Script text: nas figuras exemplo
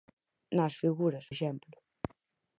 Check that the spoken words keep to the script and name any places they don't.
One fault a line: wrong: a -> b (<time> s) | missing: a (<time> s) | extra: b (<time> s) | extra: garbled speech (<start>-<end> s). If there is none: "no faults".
no faults